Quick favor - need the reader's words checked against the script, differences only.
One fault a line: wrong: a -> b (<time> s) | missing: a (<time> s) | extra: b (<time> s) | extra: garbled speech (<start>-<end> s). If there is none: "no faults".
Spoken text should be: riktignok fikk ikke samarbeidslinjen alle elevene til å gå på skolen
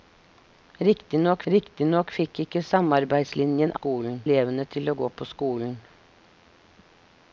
extra: riktignok (1.5 s)
wrong: alle -> skolen (3.8 s)